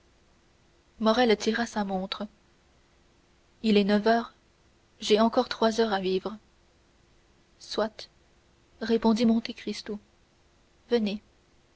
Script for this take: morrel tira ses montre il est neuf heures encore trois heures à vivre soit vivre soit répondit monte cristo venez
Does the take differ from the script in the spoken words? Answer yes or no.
yes